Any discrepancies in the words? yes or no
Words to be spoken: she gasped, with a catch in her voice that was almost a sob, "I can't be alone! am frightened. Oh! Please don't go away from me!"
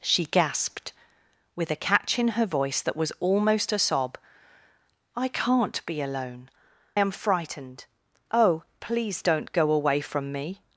no